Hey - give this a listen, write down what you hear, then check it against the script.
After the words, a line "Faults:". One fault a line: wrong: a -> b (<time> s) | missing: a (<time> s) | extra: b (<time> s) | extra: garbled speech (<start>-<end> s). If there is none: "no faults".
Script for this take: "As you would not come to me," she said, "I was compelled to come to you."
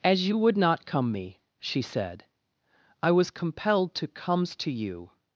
"As you would not come me," she said, "I was compelled to comes to you."
Faults:
missing: to (1.1 s)
wrong: come -> comes (4.1 s)